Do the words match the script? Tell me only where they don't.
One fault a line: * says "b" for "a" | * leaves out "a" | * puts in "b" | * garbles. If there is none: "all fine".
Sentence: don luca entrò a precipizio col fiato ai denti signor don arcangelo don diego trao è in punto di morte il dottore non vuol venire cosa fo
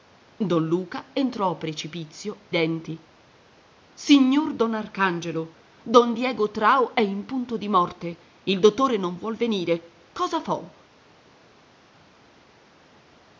* leaves out "col fiato ai"